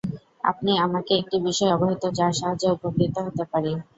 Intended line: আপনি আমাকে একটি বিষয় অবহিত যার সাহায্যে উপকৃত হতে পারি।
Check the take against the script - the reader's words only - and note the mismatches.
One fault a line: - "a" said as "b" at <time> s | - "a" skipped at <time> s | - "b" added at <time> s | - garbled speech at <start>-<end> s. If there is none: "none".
none